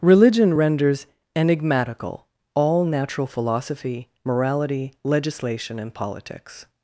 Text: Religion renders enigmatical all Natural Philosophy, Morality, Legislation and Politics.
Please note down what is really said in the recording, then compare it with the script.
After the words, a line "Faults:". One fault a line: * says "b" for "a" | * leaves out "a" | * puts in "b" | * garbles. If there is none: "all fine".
Religion renders enigmatical all Natural Philosophy, Morality, Legislation and Politics.
Faults:
all fine